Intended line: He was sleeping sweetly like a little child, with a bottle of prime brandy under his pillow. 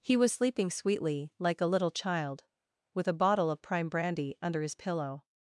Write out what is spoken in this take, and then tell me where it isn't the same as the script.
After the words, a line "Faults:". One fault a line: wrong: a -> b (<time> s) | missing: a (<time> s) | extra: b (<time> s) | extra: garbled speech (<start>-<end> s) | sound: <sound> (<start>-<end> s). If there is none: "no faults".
He was sleeping sweetly like a little child, with a bottle of prime brandy under his pillow.
Faults:
no faults